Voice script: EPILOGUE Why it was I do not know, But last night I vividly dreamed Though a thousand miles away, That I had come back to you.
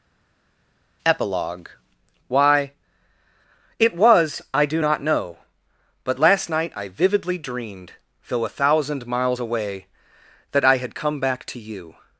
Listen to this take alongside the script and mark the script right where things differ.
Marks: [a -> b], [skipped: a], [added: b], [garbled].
EPILOGUE Why it was I do not know, But last night I vividly dreamed Though a thousand miles away, That I had come back to you.